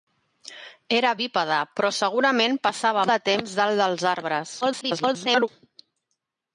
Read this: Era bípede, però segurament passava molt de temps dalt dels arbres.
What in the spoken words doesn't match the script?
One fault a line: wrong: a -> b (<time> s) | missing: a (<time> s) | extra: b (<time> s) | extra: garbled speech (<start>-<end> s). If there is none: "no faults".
missing: molt (3.1 s)
extra: garbled speech (4.6-5.5 s)